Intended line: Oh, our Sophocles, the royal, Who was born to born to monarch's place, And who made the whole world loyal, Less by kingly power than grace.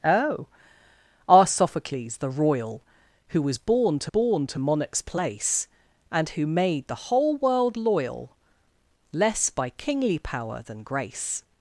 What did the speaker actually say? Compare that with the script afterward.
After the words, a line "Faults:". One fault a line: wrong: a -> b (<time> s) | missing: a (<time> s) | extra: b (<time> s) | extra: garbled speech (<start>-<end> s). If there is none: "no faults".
Oh, our Sophocles, the royal, Who was born to born to monarch's place, And who made the whole world loyal, Less by kingly power than grace.
Faults:
no faults